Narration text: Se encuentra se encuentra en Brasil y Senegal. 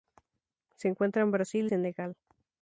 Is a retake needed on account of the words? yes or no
yes